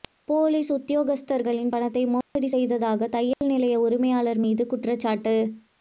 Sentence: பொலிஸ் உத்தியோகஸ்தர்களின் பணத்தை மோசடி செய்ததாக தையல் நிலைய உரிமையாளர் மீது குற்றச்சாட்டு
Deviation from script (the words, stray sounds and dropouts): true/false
true